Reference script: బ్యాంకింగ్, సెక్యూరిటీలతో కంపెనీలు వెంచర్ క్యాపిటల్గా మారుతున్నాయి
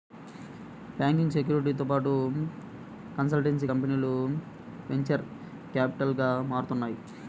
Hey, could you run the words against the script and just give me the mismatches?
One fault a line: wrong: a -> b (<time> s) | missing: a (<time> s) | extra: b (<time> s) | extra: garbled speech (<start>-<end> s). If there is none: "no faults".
extra: పాటు కన్సల్టెన్సీ (1.9 s)